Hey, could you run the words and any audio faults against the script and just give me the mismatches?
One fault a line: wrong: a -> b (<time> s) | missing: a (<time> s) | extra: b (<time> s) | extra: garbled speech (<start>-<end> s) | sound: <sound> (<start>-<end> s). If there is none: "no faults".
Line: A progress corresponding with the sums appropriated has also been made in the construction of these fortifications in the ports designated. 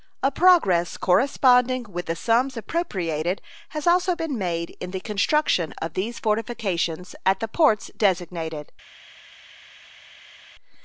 wrong: in -> at (7.2 s)